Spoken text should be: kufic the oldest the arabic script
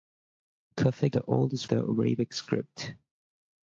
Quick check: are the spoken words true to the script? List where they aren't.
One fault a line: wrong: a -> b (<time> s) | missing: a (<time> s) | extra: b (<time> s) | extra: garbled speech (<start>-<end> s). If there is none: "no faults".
no faults